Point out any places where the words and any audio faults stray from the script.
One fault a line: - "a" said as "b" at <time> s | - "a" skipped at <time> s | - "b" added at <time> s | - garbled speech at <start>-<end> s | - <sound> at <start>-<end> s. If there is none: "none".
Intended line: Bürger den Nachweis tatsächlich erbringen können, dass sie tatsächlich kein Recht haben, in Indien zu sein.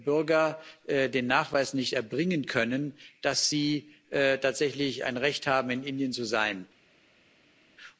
- "tatsächlich" said as "nicht" at 1.7 s
- "kein" said as "ein" at 5.0 s